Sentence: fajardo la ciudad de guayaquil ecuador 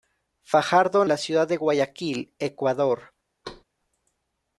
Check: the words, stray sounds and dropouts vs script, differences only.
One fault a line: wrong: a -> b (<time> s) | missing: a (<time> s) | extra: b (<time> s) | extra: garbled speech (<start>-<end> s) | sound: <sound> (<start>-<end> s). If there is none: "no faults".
sound: thud (3.4-3.6 s)